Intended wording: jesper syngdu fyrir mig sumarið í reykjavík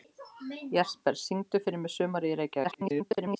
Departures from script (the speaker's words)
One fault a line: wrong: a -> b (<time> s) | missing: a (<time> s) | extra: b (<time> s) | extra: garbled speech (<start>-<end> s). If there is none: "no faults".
extra: garbled speech (2.6-3.4 s)